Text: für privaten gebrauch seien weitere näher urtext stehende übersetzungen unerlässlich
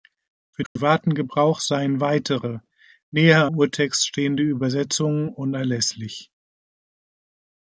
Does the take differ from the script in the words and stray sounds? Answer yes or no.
yes